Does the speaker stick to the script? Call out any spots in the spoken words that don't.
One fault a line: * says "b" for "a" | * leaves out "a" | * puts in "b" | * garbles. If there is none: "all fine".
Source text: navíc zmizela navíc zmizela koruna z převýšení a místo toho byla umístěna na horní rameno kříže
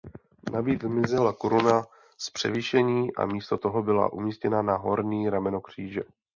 * leaves out "navíc zmizela"